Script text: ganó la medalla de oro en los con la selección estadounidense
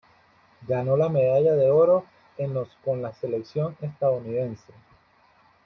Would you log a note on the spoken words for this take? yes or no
no